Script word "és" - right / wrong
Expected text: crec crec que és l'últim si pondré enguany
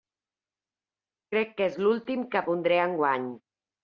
right